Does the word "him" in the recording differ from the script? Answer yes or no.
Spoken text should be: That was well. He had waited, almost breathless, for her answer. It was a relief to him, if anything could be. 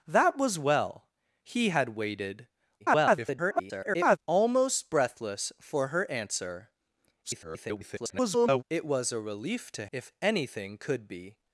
yes